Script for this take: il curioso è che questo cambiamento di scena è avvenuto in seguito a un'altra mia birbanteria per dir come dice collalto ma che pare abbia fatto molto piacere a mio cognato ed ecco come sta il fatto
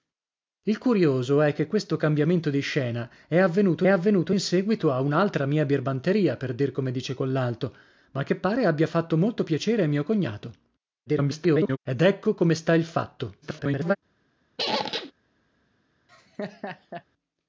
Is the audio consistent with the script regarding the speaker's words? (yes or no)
no